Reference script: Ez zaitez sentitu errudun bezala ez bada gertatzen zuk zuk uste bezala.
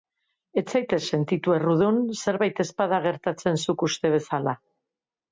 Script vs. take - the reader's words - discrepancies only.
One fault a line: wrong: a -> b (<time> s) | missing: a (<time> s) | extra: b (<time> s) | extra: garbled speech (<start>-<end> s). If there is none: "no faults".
wrong: bezala -> zerbait (2.2 s)
missing: zuk (3.9 s)